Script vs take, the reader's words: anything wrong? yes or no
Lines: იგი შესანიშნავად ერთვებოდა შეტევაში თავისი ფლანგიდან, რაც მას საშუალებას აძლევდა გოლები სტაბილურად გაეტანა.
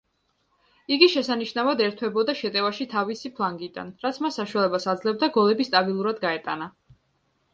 no